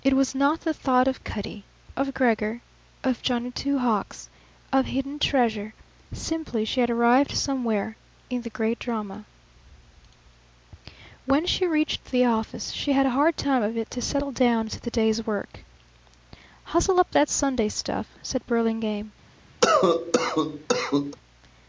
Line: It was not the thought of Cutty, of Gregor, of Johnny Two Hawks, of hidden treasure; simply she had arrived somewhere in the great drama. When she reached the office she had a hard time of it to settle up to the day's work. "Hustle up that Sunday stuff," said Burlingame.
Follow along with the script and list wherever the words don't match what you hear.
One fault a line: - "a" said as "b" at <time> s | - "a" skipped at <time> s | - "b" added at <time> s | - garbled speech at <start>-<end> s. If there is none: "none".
- "up" said as "down" at 14.3 s